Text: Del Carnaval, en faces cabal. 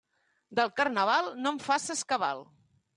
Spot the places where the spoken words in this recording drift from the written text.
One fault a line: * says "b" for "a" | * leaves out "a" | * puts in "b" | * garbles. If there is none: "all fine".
* puts in "no"